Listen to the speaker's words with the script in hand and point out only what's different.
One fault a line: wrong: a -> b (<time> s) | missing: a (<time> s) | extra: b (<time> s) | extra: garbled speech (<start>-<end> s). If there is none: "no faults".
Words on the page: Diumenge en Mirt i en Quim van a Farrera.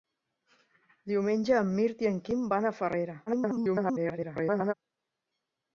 extra: garbled speech (3.3-4.7 s)